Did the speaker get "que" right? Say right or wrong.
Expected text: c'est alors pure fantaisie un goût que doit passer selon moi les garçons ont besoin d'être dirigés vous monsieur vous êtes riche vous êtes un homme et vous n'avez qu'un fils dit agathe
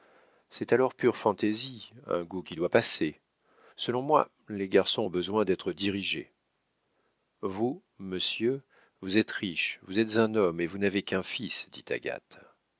wrong